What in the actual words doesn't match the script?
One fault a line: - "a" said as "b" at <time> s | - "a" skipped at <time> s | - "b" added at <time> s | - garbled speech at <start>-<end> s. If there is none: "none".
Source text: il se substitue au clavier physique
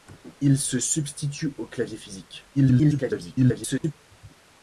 - garbled speech at 2.5-3.9 s